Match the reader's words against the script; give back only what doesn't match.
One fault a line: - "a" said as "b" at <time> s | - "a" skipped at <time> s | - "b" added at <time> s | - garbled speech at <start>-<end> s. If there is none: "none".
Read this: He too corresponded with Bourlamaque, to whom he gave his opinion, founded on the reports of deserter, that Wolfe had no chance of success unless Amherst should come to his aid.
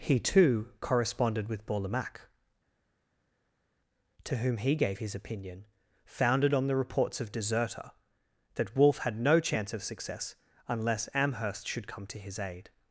none